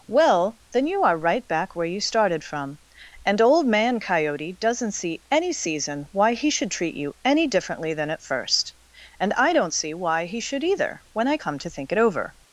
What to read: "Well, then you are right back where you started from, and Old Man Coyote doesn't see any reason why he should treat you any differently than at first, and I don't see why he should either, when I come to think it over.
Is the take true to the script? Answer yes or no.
no